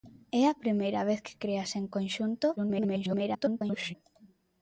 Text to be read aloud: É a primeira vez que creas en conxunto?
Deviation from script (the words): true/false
true